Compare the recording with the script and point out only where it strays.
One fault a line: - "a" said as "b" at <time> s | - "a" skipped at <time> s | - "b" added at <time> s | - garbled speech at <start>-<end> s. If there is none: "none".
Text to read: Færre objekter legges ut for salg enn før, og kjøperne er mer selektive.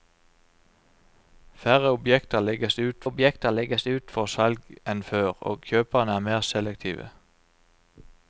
- "objekter legges ut" added at 3.0 s